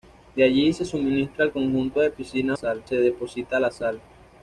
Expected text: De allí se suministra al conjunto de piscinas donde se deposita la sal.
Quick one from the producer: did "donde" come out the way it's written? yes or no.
no